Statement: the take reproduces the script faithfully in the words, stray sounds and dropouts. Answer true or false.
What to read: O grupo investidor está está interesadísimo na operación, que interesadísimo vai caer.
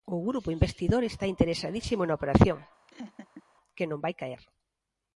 false